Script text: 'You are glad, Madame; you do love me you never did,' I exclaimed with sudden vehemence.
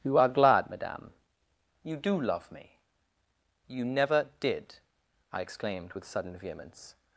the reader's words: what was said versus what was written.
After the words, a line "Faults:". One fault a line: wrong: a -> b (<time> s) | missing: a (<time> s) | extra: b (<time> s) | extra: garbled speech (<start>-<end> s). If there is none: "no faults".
'You are glad, Madame; you do love me you never did,' I exclaimed with sudden vehemence.
Faults:
no faults